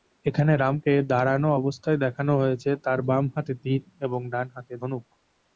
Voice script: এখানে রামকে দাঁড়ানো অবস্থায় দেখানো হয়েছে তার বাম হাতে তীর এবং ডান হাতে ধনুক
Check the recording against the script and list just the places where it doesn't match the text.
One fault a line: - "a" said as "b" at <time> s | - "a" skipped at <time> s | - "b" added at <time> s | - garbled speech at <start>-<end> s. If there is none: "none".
none